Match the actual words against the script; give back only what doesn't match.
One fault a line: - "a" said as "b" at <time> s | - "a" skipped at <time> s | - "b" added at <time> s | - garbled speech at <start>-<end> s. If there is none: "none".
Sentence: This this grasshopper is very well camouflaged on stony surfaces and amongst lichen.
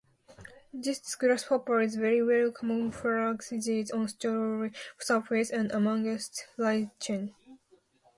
- "this" skipped at 1.1 s